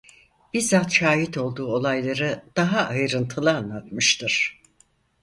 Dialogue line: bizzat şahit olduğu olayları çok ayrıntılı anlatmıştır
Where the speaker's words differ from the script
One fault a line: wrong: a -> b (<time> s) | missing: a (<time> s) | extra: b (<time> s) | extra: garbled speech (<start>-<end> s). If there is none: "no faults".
wrong: çok -> daha (2.5 s)